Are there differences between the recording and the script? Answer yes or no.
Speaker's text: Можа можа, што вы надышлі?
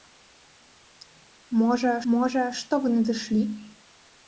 no